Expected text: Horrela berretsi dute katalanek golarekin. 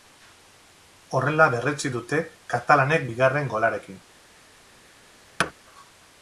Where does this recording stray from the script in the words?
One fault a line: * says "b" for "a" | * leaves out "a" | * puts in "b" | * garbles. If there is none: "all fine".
* puts in "bigarren"